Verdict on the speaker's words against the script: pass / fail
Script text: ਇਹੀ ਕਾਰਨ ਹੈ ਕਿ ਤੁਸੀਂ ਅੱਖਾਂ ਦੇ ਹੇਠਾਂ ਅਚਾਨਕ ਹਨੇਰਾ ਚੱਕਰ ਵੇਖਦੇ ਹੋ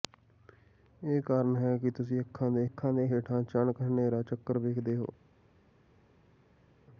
fail